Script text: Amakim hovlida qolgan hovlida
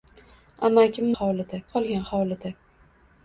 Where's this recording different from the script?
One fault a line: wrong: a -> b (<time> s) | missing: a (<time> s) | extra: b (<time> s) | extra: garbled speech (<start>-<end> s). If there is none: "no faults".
no faults